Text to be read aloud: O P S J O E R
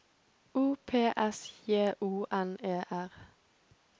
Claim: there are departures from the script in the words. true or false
true